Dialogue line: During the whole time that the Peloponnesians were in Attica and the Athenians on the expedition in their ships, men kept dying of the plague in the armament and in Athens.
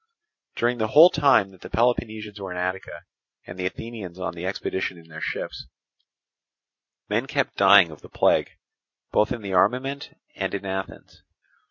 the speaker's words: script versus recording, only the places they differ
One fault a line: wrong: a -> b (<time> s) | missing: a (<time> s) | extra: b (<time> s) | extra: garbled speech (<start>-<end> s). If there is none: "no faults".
extra: both (9.1 s)